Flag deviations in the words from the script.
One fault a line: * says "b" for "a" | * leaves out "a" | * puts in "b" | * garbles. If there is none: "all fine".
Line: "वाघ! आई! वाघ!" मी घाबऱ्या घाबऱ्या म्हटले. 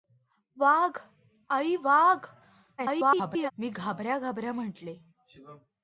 * garbles